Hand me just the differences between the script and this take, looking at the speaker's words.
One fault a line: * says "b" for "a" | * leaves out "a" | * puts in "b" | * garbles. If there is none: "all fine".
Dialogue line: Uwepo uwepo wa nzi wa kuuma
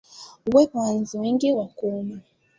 * leaves out "uwepo"
* puts in "wengi"